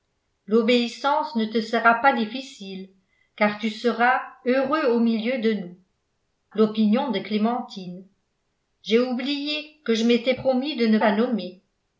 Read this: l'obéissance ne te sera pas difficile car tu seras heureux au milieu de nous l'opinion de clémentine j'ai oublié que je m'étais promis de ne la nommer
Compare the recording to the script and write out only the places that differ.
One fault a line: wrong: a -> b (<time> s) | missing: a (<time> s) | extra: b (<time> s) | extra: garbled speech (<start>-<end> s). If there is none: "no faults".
no faults